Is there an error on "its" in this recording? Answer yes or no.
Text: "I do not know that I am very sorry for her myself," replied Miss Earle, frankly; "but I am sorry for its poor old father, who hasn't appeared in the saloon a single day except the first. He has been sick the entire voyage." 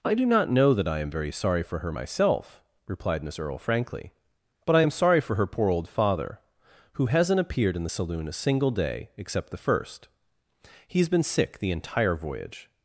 yes